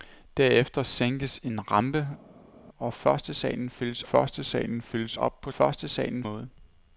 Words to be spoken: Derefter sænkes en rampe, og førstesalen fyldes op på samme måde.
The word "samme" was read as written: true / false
false